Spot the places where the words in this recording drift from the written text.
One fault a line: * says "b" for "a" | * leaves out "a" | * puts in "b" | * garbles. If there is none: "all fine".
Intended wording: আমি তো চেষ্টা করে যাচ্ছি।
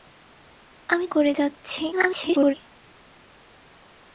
* leaves out "তো চেষ্টা"
* garbles